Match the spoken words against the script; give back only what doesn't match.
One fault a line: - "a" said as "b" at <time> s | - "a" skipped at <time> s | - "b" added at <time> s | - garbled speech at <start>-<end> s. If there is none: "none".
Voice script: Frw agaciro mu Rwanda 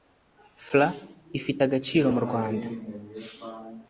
- "ifite" added at 1.4 s